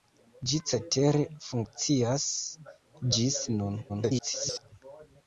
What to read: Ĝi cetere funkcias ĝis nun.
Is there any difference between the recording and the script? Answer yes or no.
yes